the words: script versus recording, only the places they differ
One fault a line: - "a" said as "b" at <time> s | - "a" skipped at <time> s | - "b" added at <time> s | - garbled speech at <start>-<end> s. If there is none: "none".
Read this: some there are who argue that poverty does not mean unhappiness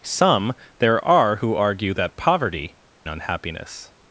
- "does not mean" skipped at 2.8 s